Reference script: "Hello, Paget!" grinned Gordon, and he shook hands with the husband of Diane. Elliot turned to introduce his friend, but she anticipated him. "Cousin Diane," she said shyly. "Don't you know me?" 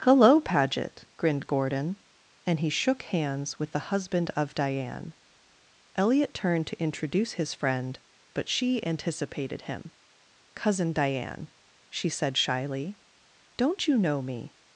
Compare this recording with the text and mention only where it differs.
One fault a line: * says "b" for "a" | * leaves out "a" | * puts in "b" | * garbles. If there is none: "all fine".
all fine